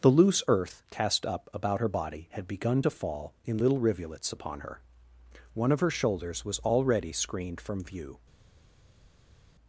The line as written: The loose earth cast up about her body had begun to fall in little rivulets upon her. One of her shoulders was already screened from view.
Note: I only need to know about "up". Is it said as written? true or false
true